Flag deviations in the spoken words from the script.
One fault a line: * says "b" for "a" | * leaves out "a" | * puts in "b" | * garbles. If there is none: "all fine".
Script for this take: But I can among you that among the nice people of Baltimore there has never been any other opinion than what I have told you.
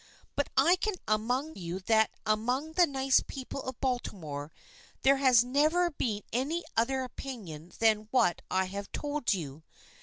all fine